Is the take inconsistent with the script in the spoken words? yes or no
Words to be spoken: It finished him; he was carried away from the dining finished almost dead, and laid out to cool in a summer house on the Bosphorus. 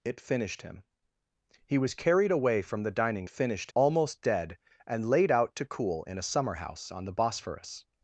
no